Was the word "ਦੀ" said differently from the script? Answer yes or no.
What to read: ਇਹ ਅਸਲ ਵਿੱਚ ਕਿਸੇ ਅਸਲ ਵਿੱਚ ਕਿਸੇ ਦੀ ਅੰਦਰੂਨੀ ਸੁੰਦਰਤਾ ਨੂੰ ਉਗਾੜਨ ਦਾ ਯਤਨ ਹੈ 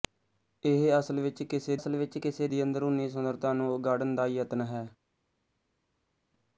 no